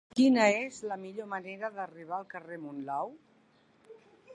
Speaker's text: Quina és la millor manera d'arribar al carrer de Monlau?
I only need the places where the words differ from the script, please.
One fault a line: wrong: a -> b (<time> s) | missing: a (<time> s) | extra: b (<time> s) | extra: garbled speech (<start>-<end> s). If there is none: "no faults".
no faults